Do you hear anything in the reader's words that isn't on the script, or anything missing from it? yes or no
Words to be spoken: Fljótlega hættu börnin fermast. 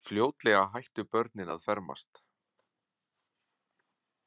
yes